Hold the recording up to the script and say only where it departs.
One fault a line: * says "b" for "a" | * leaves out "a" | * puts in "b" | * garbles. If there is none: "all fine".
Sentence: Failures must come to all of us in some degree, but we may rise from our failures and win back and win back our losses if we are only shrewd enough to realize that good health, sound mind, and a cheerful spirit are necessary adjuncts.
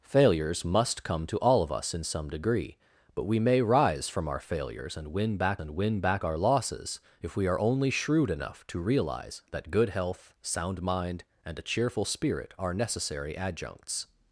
all fine